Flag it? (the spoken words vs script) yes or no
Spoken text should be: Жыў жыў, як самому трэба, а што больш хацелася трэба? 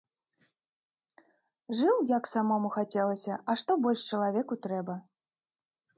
yes